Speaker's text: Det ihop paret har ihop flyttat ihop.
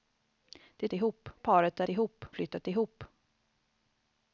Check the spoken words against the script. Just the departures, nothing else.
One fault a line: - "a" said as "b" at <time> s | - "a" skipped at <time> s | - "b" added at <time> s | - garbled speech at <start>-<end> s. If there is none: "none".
none